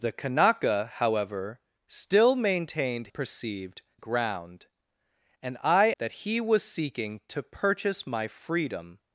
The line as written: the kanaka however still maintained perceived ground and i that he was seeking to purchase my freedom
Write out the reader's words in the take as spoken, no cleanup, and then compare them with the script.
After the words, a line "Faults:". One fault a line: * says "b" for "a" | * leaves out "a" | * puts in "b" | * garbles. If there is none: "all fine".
the kanaka however still maintained perceived ground and i that he was seeking to purchase my freedom
Faults:
all fine